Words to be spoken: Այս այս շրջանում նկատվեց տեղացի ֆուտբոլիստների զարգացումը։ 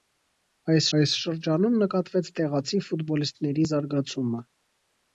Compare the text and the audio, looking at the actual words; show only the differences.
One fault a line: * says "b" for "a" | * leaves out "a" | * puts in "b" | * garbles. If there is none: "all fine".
all fine